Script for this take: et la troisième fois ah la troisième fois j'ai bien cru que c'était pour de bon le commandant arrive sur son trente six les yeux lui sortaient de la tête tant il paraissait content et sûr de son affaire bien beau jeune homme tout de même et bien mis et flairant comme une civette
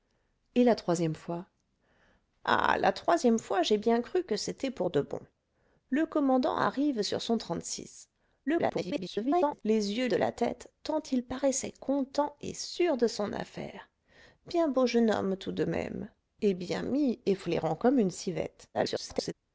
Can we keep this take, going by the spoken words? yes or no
no